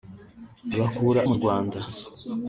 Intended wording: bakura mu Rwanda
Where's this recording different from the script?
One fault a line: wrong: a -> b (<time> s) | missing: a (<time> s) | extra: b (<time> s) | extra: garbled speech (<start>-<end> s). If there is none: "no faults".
no faults